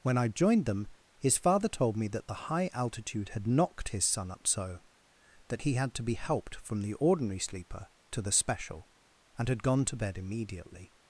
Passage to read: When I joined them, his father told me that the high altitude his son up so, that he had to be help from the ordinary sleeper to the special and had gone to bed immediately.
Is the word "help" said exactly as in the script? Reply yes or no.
no